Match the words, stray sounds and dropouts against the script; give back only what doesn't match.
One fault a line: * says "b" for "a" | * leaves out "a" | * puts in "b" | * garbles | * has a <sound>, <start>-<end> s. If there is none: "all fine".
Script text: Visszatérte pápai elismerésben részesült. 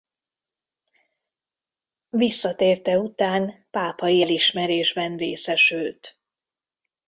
* puts in "után"